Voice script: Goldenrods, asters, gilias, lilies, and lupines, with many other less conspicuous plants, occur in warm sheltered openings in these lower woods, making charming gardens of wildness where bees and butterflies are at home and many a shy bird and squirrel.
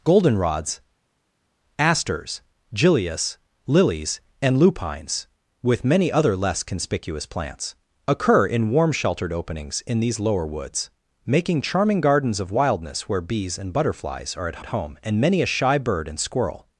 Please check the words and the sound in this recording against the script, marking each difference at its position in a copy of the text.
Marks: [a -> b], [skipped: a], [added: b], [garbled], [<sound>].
Goldenrods, asters, gilias, lilies, and lupines, with many other less conspicuous plants, occur in warm sheltered openings in these lower woods, making charming gardens of wildness where bees and butterflies are at [added: at] home and many a shy bird and squirrel.